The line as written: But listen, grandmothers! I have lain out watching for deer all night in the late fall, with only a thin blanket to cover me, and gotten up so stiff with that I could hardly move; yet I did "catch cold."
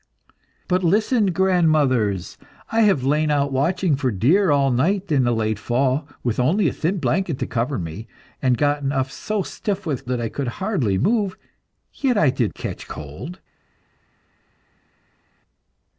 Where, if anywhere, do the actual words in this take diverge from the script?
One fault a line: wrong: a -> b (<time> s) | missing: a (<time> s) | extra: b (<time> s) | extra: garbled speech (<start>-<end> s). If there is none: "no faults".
no faults